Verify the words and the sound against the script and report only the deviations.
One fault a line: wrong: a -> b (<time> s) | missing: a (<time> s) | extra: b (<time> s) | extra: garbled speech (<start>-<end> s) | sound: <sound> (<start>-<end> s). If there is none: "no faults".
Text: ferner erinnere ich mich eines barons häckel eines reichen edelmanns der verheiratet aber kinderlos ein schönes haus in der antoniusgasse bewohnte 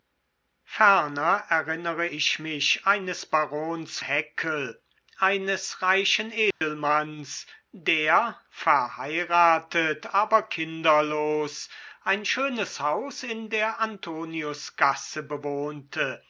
sound: dropout (6.5-6.6 s)